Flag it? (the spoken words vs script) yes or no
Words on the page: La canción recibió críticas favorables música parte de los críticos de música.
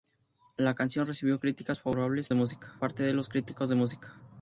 no